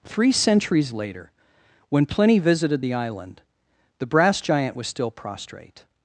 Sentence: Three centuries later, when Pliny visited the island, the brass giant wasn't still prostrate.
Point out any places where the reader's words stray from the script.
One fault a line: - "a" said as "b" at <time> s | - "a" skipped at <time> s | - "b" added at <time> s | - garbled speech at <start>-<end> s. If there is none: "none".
- "wasn't" said as "was" at 4.8 s